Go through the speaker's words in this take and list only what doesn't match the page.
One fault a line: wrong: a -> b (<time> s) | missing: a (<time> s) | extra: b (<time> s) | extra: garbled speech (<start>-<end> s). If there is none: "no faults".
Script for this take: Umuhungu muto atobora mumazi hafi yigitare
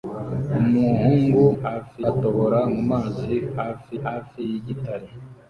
wrong: muto -> hafi (1.6 s)
extra: hafi (4.0 s)